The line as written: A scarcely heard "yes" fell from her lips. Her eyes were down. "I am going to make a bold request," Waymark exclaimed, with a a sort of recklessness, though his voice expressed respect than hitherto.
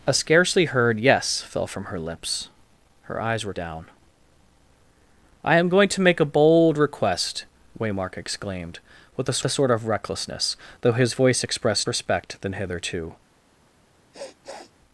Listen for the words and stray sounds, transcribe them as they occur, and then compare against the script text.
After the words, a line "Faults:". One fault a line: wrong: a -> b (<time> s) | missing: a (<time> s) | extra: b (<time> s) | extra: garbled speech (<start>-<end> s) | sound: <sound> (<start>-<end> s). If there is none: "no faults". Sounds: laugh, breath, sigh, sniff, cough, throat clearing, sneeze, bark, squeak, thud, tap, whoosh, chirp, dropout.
A scarcely heard "yes" fell from her lips. Her eyes were down. "I am going to make a bold request," Waymark exclaimed, with a a sort of recklessness, though his voice expressed respect than hitherto.
Faults:
sound: sniff (14.1-14.7 s)